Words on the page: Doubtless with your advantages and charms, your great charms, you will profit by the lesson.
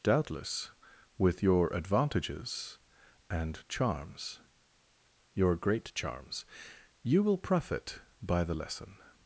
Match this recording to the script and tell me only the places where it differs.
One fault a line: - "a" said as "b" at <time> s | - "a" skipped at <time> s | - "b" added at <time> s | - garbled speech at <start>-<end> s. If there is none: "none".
none